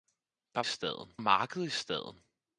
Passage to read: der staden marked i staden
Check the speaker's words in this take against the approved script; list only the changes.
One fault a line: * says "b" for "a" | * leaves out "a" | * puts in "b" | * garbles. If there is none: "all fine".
all fine